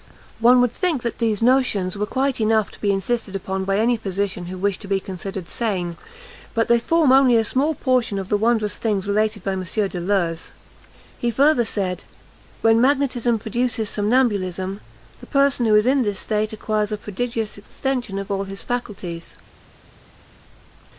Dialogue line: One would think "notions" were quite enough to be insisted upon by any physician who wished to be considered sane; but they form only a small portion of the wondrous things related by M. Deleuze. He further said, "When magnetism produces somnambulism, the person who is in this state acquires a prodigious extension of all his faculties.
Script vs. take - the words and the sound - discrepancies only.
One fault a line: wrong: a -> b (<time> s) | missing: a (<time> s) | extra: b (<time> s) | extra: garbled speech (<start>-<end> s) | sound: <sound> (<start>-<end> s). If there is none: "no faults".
extra: that these (1.0 s)